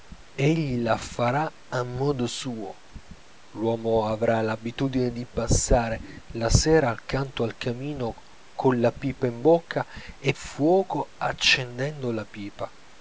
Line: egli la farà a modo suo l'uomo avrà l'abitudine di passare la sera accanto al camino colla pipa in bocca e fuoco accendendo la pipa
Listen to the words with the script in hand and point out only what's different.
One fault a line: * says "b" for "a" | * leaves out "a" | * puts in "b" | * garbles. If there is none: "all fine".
all fine